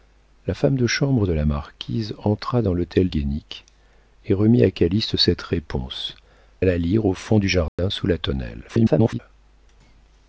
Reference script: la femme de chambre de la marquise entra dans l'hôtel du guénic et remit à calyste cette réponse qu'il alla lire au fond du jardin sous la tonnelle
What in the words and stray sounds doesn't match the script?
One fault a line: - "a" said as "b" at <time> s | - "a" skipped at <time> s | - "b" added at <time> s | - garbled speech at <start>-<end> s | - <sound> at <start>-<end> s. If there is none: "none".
- "du" skipped at 3.1 s
- "qu'il" skipped at 6.1 s
- dropout at 7.7-7.8 s
- garbled speech at 8.7-9.2 s